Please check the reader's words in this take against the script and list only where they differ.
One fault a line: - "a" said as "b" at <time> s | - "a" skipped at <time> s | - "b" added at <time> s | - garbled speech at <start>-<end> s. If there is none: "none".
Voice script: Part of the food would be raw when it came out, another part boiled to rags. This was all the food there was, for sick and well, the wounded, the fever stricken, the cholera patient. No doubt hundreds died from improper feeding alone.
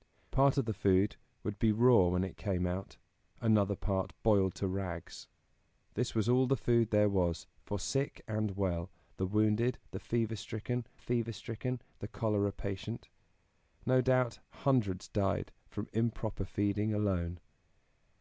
- "fever stricken" added at 11.0 s